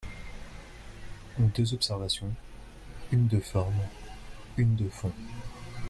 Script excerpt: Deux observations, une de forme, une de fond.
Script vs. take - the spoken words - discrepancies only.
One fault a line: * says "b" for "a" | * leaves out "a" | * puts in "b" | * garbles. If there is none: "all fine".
all fine